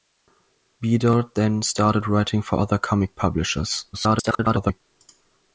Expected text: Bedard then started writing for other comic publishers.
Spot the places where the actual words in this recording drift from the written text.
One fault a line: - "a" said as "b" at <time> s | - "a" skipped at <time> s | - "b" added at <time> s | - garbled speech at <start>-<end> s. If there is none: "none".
- garbled speech at 3.9-4.8 s